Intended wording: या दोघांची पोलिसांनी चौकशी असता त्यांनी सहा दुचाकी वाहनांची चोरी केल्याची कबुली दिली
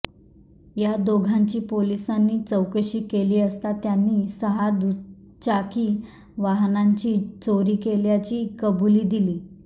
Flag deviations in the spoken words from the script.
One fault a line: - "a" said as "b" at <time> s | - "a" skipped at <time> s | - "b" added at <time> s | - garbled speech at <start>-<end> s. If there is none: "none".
- "केली" added at 3.1 s